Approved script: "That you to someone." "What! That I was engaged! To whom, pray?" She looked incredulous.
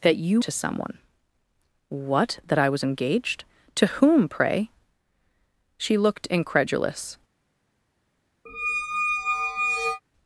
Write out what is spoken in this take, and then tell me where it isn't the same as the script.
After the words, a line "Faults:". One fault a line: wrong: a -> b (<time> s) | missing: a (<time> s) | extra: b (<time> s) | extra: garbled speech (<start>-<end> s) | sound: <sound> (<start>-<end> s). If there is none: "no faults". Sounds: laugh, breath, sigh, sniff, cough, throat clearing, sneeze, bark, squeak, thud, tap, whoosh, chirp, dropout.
"That you to someone." "What! That I was engaged! To whom, pray?" She looked incredulous.
Faults:
sound: squeak (8.5-10.0 s)